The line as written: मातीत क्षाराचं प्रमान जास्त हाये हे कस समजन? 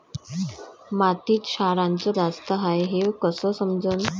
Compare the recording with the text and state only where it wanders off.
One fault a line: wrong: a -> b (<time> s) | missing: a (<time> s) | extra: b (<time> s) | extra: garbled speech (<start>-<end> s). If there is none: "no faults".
missing: प्रमान (2.1 s)